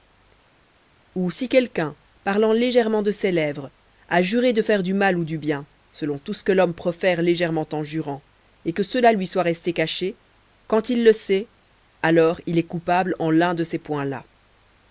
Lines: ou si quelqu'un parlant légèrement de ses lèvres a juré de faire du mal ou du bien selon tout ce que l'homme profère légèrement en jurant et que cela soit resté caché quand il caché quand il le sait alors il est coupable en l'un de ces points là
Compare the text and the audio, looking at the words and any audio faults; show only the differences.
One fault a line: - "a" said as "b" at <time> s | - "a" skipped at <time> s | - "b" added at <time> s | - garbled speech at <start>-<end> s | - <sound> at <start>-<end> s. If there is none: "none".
- "lui" added at 9.1 s
- "caché quand il" skipped at 11.0 s